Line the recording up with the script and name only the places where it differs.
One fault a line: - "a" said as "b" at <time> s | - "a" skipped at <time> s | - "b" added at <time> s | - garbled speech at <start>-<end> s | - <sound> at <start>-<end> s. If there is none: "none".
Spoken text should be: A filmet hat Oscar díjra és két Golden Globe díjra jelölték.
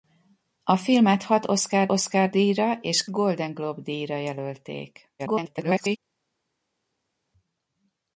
- "Oscar" added at 1.9 s
- "két" skipped at 3.1 s
- garbled speech at 5.2-6.0 s